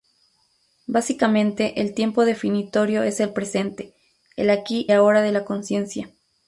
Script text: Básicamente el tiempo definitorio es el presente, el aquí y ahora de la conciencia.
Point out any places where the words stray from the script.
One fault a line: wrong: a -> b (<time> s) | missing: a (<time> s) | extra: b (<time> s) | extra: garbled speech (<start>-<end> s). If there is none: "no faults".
missing: y (4.9 s)